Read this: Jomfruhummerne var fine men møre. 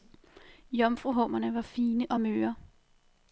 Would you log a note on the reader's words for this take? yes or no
yes